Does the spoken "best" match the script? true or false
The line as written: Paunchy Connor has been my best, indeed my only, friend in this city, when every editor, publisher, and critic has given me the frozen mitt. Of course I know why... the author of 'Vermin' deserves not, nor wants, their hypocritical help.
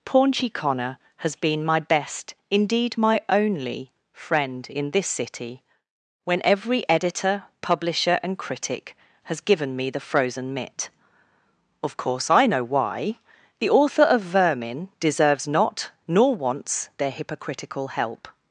true